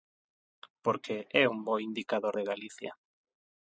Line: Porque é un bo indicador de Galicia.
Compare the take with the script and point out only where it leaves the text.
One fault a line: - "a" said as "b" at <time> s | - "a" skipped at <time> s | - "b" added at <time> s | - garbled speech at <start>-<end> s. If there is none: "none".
none